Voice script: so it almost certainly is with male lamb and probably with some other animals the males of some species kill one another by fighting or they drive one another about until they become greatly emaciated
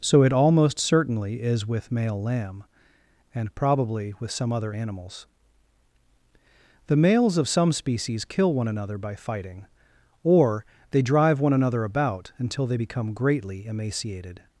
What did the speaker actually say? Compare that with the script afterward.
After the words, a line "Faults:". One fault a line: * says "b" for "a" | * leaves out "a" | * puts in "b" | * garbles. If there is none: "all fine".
so it almost certainly is with male lamb and probably with some other animals the males of some species kill one another by fighting or they drive one another about until they become greatly emaciated
Faults:
all fine